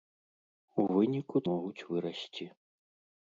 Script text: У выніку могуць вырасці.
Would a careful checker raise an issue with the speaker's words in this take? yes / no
no